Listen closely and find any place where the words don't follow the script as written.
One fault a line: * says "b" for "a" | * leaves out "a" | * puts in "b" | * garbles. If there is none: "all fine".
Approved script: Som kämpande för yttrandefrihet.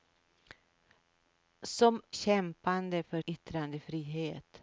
all fine